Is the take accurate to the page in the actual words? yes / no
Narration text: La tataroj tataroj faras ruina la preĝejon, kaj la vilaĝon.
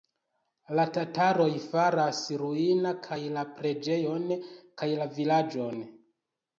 no